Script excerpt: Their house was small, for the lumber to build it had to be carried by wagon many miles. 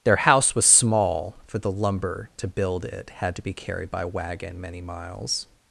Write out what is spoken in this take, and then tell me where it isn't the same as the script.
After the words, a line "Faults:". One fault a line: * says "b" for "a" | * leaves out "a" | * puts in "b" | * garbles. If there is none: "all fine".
Their house was small, for the lumber to build it had to be carried by wagon many miles.
Faults:
all fine